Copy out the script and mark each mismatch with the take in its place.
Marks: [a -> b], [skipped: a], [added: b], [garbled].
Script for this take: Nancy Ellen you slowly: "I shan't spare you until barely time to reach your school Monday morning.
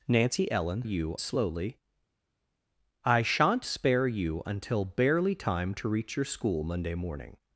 Nancy Ellen you slowly: "I shan't spare you until barely time to reach your school Monday morning.